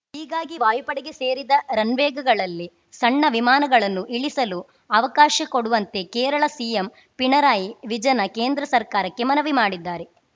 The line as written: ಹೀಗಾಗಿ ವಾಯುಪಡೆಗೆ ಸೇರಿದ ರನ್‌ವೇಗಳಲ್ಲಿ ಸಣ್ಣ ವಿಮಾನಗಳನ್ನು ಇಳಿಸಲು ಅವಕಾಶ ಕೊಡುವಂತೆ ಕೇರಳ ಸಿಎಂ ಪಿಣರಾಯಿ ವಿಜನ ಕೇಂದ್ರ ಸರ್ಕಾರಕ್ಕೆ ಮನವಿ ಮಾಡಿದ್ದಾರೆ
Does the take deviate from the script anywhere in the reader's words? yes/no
no